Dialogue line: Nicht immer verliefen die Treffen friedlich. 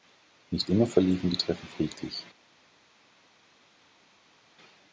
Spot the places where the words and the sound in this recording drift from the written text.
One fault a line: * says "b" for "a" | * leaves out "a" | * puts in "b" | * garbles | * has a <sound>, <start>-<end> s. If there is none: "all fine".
all fine